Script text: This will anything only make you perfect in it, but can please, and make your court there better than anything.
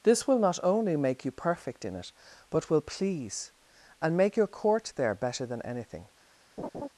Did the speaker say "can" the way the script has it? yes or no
no